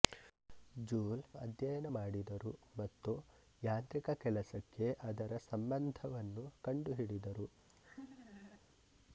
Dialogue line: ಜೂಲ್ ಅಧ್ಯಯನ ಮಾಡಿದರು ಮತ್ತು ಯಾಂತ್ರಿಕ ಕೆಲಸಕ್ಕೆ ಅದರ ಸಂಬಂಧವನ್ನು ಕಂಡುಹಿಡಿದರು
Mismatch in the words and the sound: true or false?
true